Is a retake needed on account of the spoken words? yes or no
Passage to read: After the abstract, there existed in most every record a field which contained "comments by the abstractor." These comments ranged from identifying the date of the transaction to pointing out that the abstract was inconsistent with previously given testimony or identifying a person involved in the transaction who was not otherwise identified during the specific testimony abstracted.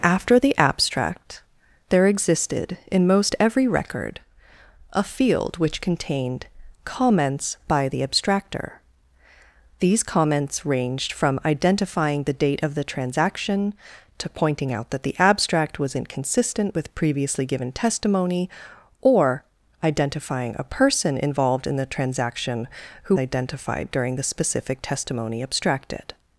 yes